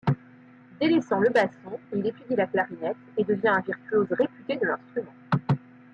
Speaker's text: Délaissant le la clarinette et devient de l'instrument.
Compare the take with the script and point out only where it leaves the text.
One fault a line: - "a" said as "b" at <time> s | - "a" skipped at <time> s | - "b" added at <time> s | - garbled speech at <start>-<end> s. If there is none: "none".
- "basson il étudie" added at 1.3 s
- "un virtuose réputé" added at 3.5 s